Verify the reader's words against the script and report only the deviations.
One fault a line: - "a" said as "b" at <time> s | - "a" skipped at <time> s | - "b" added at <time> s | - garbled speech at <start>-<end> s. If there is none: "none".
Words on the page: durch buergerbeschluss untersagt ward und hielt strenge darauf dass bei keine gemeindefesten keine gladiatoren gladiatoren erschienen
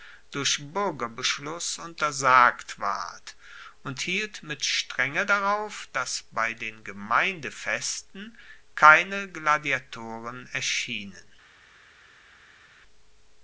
- "mit" added at 4.4 s
- "keine" said as "den" at 6.5 s
- "gladiatoren" skipped at 10.5 s